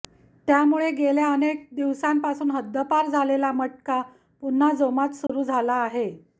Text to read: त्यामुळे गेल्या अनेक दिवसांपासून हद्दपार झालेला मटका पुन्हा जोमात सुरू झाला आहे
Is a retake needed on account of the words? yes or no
no